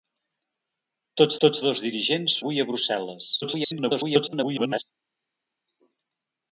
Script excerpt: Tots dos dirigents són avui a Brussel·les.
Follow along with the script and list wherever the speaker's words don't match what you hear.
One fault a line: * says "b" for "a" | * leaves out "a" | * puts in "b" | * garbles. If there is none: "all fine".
* puts in "tots"
* leaves out "són"
* garbles